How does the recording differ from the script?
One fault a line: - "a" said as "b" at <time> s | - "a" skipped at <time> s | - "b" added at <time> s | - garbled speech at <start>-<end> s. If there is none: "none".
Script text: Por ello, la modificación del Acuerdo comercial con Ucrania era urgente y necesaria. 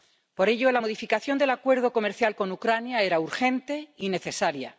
none